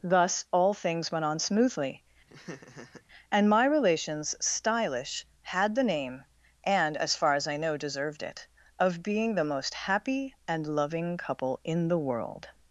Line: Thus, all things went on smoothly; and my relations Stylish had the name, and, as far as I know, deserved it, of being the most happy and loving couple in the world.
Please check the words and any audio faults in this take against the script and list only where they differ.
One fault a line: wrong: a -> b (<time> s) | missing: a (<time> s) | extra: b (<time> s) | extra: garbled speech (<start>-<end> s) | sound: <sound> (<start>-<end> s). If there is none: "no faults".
sound: laugh (2.3-3.0 s)